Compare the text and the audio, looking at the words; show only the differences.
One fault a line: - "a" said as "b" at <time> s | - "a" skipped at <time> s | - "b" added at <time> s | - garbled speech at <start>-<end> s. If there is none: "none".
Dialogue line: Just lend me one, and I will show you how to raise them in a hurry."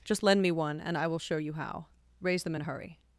- "to" skipped at 1.9 s